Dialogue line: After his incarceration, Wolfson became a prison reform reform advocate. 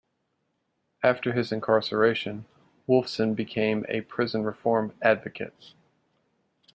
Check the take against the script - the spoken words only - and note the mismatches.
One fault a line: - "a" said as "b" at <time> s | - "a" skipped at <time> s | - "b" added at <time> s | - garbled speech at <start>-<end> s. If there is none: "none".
- "reform" skipped at 5.0 s